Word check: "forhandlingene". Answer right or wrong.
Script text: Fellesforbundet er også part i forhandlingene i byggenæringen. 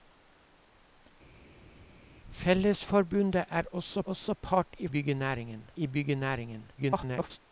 wrong